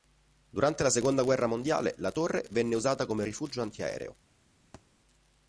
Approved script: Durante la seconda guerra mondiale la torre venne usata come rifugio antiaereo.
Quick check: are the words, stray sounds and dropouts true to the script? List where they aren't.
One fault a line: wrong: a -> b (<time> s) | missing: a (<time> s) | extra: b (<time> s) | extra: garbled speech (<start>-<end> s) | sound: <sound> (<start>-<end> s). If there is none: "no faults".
sound: thud (4.7-4.8 s)